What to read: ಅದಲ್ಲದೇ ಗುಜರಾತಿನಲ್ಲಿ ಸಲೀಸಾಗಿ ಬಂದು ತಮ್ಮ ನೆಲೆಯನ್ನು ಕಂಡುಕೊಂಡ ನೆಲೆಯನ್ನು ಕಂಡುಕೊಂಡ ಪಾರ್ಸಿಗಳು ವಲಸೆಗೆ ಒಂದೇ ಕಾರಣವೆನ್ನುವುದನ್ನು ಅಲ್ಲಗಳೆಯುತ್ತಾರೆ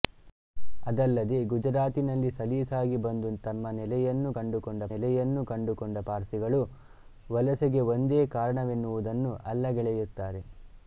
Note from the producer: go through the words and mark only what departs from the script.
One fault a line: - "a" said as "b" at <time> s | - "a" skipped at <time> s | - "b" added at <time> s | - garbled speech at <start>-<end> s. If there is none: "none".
none